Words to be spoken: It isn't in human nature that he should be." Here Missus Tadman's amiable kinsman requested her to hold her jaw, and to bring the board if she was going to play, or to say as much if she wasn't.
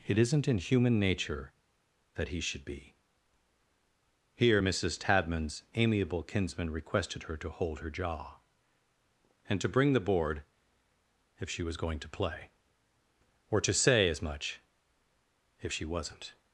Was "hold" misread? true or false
false